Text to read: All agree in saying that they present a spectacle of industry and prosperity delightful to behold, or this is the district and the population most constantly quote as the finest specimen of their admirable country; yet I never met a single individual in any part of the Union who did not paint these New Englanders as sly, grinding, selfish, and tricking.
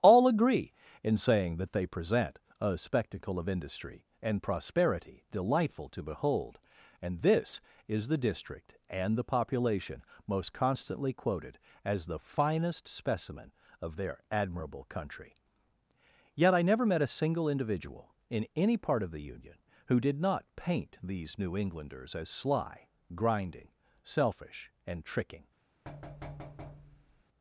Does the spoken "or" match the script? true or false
false